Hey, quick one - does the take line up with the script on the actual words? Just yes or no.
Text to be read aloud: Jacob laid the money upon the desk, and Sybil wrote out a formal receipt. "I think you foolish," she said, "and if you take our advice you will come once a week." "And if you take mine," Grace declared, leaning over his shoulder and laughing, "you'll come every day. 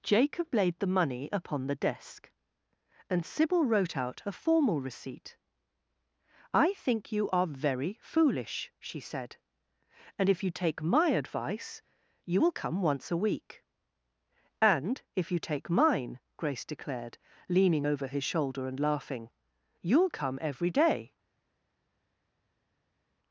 no